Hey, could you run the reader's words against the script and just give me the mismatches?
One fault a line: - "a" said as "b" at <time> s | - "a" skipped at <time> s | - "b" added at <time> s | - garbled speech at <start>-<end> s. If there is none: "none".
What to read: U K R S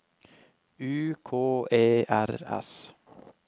- "E" added at 1.7 s